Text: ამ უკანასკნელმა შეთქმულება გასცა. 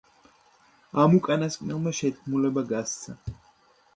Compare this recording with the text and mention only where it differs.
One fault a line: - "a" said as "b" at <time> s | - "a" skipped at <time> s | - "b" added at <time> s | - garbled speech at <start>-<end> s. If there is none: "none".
none